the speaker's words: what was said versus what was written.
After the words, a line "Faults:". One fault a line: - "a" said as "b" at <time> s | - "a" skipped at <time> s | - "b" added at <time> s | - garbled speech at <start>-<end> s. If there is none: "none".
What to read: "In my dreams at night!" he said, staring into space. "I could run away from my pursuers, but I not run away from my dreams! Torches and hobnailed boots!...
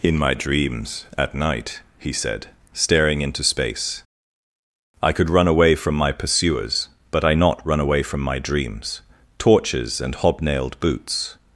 "In my dreams at night!" he said, staring into space. "I could run away from my pursuers, but I not run away from my dreams! Torches and hobnailed boots!...
Faults:
none